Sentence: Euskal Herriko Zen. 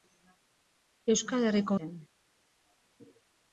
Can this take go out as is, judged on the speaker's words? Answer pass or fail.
pass